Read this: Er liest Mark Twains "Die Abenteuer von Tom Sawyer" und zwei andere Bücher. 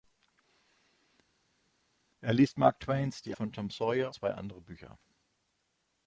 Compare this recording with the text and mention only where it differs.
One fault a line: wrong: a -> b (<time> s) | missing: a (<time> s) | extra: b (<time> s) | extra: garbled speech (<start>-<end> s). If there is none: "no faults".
missing: Abenteuer (3.3 s)
missing: und (4.1 s)